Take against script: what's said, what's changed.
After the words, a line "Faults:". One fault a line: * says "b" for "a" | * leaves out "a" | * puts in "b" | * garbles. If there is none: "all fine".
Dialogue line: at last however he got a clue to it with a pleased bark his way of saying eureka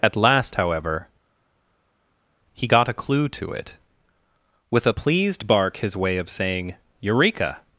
at last however he got a clue to it with a pleased bark his way of saying eureka
Faults:
all fine